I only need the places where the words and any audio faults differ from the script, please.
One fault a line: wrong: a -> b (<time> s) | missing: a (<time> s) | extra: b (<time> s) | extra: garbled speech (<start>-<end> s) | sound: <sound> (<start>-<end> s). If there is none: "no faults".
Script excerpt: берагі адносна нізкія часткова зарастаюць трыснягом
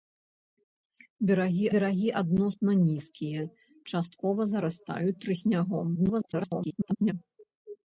extra: берагі (1.8 s)
extra: garbled speech (5.9-7.1 s)